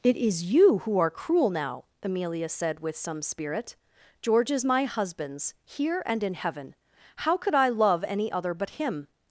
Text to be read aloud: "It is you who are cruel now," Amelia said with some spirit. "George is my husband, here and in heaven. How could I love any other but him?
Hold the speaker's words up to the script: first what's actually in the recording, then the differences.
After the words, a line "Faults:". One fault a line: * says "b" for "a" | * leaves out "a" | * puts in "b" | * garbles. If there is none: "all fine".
"It is you who are cruel now," Amelia said with some spirit. "George is my husbands, here and in heaven. How could I love any other but him?
Faults:
* says "husbands" for "husband"